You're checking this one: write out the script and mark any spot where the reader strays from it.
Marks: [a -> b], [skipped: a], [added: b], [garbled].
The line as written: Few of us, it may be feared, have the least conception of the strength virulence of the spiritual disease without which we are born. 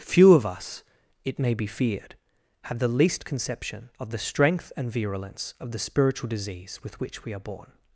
Few of us, it may be feared, have the least conception of the strength [added: and] virulence of the spiritual disease [without -> with] which we are born.